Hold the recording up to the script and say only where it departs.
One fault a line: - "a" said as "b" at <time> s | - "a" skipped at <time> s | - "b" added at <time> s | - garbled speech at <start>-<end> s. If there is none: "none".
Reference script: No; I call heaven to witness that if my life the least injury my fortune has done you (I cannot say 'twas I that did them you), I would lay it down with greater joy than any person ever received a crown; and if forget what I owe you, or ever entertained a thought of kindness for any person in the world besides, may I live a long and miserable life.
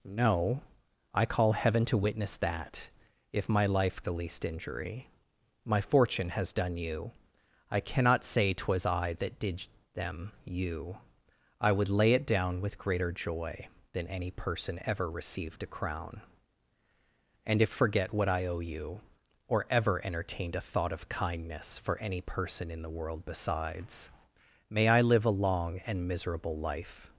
none